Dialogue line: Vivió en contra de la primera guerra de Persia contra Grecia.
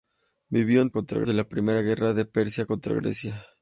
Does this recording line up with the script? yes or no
yes